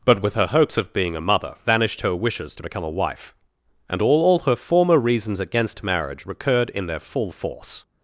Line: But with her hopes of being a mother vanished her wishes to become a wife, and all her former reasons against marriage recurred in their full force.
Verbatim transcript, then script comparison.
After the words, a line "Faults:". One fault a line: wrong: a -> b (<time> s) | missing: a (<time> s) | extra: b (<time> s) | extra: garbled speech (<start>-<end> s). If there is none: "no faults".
But with her hopes of being a mother vanished her wishes to become a wife, and all all her former reasons against marriage recurred in their full force.
Faults:
extra: all (4.2 s)